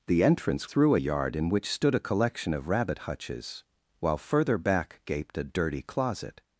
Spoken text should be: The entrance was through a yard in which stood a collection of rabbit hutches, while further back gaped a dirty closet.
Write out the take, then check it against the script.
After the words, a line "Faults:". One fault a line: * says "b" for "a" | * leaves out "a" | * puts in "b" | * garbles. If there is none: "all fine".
The entrance through a yard in which stood a collection of rabbit hutches, while further back gaped a dirty closet.
Faults:
* leaves out "was"